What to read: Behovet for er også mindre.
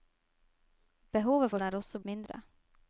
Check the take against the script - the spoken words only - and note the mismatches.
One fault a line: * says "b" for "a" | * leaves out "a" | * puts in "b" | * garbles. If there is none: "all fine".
all fine